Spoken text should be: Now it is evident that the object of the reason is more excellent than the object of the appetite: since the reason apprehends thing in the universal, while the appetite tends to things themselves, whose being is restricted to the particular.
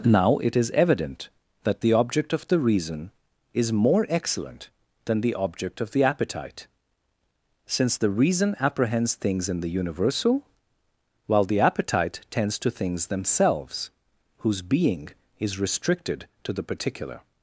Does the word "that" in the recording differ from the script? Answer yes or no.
no